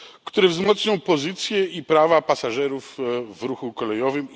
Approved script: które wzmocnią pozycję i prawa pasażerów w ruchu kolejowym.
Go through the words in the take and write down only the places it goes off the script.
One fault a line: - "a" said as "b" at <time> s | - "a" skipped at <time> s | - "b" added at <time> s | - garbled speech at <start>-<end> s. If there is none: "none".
none